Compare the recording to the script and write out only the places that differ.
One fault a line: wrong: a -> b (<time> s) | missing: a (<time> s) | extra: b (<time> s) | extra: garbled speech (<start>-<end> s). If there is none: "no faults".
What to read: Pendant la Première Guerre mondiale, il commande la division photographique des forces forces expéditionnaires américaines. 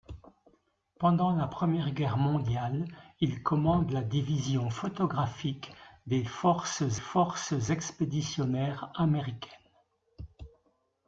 no faults